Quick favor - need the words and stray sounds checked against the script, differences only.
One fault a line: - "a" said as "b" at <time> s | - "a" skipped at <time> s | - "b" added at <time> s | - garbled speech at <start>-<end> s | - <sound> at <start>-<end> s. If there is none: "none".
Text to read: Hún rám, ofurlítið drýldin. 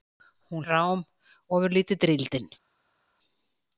none